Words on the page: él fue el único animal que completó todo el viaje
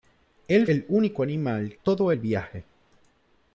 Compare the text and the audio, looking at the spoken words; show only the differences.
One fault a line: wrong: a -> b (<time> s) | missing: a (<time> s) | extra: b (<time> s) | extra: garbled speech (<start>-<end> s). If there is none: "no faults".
missing: fue (0.7 s)
missing: que completó (1.7 s)